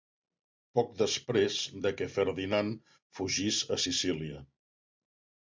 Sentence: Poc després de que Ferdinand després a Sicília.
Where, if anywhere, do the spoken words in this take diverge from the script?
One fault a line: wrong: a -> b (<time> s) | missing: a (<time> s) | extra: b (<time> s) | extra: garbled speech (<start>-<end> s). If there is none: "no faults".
wrong: després -> fugís (3.2 s)